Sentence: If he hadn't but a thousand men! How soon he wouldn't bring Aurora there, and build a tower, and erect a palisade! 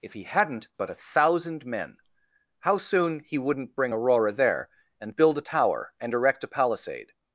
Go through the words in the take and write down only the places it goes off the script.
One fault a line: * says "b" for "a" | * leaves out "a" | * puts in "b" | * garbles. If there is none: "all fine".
all fine